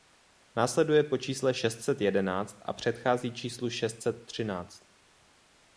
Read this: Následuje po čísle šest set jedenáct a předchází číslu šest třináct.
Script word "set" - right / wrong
right